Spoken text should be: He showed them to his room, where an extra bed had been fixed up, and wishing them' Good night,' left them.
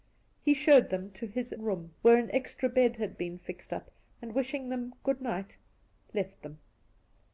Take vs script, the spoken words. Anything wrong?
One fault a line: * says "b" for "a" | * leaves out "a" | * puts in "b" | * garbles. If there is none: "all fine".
all fine